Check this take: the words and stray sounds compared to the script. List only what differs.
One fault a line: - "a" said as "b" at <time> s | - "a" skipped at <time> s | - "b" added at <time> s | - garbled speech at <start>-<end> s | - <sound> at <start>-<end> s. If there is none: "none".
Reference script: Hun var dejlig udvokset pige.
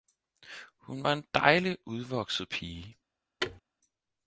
- "en" added at 1.1 s
- thud at 3.4-3.6 s